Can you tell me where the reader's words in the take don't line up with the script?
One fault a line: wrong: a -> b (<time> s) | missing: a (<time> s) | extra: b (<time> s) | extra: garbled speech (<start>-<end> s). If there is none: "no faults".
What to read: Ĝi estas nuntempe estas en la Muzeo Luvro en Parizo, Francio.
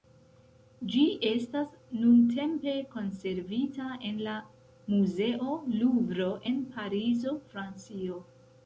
wrong: estas -> konservita (3.0 s)